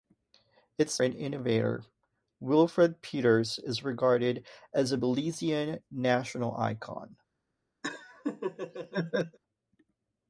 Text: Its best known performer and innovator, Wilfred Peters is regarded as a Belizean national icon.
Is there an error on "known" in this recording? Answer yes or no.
yes